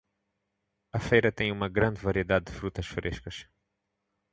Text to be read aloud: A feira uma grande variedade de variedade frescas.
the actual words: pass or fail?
fail